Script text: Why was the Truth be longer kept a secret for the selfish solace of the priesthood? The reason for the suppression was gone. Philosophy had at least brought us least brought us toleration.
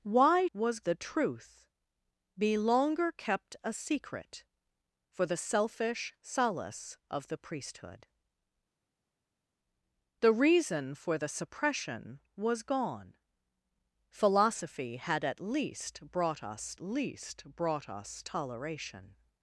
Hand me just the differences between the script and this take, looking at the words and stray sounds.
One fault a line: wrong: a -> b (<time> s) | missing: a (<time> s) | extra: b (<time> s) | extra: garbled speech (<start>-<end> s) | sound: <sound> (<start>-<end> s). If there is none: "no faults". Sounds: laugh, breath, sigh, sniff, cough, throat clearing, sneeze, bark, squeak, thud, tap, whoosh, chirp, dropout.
no faults